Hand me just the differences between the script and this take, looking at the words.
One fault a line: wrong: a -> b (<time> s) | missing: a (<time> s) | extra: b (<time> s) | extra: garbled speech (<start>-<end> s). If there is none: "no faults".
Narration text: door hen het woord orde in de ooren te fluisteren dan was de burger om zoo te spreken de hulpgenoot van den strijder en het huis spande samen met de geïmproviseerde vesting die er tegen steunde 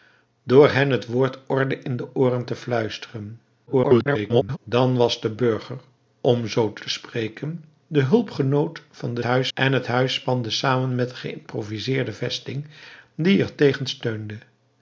extra: garbled speech (3.7-4.6 s)
extra: te (6.8 s)
wrong: strijder -> huis (9.2 s)